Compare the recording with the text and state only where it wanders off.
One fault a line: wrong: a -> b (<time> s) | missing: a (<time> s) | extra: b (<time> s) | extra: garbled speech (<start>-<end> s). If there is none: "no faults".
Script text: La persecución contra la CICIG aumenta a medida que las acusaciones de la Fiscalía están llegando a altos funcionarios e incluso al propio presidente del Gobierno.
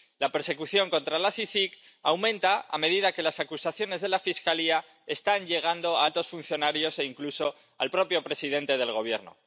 no faults